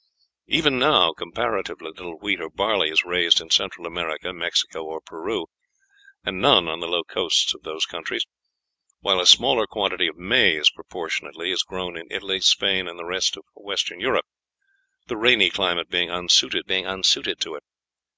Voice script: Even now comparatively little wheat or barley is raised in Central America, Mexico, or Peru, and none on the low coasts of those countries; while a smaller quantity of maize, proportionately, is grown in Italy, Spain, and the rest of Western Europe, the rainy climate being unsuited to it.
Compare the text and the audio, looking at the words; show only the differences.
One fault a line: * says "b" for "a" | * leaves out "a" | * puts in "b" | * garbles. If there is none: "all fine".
* puts in "being unsuited"